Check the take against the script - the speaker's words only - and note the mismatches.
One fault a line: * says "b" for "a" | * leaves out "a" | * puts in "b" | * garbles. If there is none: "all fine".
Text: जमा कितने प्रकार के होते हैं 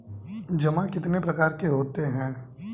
all fine